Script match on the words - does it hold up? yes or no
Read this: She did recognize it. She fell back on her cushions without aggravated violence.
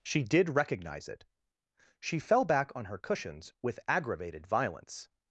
no